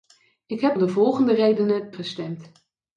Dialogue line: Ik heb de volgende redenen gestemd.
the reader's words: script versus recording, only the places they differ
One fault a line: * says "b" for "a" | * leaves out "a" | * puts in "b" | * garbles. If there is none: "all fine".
all fine